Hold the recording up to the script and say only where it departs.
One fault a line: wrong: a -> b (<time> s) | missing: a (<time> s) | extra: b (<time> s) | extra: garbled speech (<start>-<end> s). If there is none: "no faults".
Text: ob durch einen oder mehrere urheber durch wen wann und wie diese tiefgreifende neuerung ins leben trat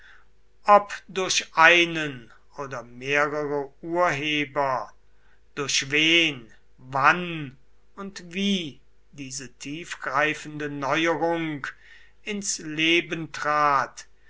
no faults